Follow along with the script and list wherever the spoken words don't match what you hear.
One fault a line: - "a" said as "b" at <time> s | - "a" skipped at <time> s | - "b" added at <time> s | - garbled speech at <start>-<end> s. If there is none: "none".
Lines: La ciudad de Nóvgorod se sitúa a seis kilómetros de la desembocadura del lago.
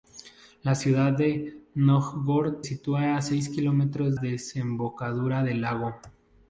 - "se" skipped at 2.6 s
- "de la" skipped at 4.2 s